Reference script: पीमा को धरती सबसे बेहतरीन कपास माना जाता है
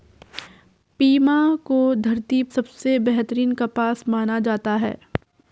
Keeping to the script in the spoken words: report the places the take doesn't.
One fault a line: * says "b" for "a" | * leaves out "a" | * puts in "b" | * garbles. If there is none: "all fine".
all fine